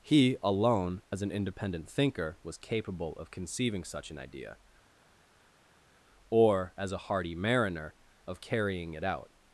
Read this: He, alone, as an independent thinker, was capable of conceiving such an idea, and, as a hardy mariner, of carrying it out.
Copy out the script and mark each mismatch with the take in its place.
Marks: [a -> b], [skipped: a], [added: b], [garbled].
He, alone, as an independent thinker, was capable of conceiving such an idea, [and, -> or] as a hardy mariner, of carrying it out.